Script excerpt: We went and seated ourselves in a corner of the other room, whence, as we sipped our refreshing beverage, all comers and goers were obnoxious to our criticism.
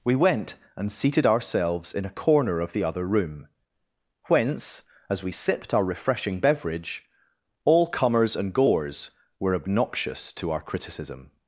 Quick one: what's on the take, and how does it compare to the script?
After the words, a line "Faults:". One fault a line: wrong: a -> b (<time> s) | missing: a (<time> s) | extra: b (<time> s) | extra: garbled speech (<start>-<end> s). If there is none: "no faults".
We went and seated ourselves in a corner of the other room, whence, as we sipped our refreshing beverage, all comers and goers were obnoxious to our criticism.
Faults:
no faults